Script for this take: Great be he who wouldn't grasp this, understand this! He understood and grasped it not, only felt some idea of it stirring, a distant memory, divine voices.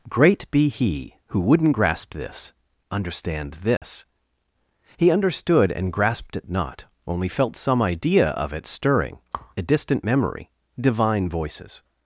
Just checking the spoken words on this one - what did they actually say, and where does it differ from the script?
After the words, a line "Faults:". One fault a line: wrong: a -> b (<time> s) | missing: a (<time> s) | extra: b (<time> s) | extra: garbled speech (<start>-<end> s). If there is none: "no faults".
Great be he who wouldn't grasp this, understand this! He understood and grasped it not, only felt some idea of it stirring, a distant memory, divine voices.
Faults:
no faults